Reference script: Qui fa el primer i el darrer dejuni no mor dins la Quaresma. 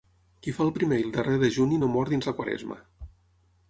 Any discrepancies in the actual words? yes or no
no